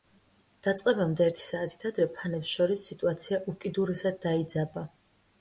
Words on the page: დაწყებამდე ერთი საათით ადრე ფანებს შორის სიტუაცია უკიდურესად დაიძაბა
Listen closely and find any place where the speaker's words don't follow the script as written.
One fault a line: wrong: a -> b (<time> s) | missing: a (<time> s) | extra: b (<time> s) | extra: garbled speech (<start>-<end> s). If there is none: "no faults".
no faults